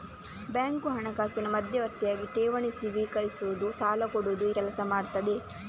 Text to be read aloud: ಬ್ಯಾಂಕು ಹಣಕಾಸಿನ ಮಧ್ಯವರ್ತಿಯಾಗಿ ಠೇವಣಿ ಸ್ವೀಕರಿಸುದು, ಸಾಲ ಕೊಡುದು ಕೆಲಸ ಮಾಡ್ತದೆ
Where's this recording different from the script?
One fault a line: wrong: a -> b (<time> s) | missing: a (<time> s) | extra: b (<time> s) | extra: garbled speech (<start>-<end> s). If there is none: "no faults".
no faults